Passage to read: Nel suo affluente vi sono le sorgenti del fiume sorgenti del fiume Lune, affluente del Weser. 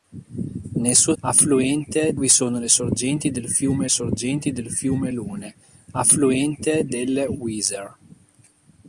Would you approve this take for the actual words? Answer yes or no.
yes